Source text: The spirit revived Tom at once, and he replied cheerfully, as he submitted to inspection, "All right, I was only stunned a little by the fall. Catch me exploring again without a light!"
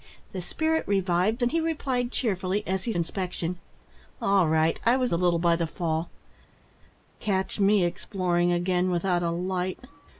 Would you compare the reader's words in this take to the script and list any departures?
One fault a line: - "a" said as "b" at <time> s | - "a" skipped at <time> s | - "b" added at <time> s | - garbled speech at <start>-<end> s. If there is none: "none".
- "Tom at once" skipped at 1.4 s
- "submitted to" skipped at 2.9 s
- "only stunned" skipped at 5.1 s